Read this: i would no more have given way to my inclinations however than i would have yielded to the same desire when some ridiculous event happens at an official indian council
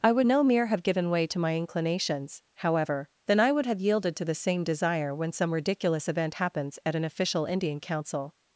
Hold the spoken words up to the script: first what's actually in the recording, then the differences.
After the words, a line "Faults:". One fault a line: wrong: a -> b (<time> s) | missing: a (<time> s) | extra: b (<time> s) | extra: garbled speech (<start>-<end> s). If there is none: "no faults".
i would no mere have given way to my inclinations however than i would have yielded to the same desire when some ridiculous event happens at an official indian council
Faults:
wrong: more -> mere (0.4 s)